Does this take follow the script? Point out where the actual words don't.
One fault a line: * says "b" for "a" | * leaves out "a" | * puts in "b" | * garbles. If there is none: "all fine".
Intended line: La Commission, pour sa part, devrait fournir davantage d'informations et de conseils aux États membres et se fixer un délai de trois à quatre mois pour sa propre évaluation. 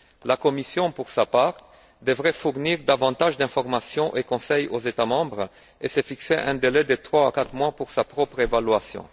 all fine